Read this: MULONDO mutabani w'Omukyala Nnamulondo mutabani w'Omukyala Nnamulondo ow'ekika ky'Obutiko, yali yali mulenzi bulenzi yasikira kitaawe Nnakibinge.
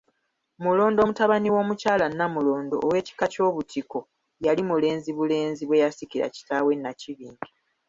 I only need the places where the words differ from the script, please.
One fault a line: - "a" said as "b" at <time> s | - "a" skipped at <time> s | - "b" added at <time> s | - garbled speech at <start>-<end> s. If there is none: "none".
- "mutabani w'Omukyala Nnamulondo" skipped at 2.8 s
- "yali" skipped at 4.6 s
- "bwe" added at 5.7 s